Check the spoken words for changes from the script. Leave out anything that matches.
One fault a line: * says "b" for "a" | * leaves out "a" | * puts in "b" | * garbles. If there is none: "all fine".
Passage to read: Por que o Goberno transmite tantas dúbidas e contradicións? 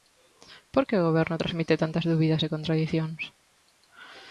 all fine